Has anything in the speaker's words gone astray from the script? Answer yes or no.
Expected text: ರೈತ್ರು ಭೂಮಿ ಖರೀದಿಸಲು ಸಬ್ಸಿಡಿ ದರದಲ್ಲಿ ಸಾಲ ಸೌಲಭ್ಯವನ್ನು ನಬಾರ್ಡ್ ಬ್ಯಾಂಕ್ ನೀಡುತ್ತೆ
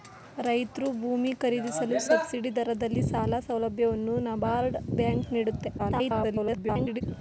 yes